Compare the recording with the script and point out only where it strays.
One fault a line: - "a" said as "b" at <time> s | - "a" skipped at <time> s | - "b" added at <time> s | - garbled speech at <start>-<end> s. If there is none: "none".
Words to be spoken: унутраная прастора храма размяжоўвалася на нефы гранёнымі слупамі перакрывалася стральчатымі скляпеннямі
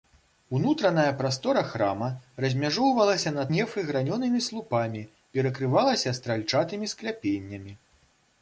none